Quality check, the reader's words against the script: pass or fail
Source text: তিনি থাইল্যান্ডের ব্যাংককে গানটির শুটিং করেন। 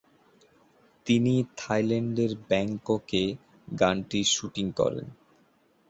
pass